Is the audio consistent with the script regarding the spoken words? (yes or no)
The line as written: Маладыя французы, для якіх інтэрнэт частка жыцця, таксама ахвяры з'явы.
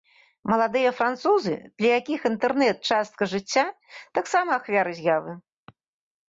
yes